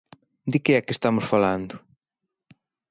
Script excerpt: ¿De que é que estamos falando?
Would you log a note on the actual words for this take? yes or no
no